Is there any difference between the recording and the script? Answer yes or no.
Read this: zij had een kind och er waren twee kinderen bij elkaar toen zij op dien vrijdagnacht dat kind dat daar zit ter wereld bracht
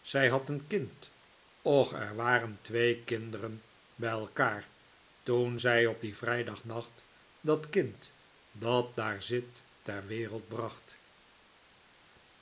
no